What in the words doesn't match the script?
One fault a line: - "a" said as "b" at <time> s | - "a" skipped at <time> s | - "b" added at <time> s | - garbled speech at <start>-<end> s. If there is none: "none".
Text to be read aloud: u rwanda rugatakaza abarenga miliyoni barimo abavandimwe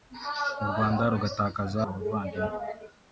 - "abarenga miliyoni barimo" skipped at 1.8 s